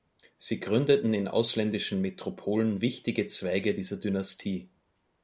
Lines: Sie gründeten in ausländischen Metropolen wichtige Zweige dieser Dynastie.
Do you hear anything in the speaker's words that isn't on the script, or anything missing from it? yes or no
no